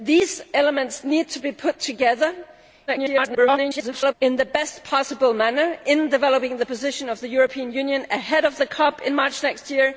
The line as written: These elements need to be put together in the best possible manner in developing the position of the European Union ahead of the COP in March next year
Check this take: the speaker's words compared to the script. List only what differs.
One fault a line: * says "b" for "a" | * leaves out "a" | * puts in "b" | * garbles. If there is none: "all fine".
* garbles